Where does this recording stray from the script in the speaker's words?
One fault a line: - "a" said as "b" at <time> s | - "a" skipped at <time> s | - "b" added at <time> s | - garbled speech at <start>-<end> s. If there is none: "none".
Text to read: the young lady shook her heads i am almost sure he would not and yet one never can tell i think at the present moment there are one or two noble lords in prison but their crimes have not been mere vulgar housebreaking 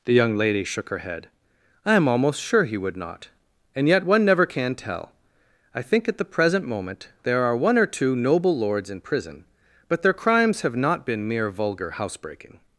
- "heads" said as "head" at 1.0 s